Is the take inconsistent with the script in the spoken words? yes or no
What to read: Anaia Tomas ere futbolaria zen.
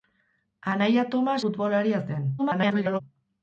yes